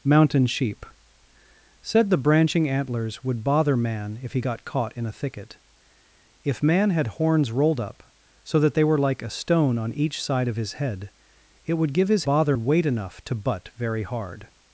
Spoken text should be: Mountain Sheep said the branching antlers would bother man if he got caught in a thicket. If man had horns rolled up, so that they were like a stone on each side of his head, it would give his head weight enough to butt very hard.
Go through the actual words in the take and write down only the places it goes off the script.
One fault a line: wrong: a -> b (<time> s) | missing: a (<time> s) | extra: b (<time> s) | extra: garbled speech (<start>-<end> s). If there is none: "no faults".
wrong: head -> bother (12.2 s)